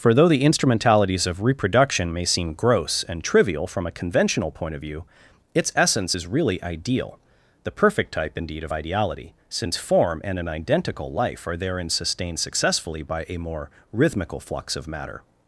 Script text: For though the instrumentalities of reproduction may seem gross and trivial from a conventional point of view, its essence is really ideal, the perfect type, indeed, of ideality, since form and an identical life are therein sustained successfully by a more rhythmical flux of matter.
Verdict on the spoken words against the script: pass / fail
pass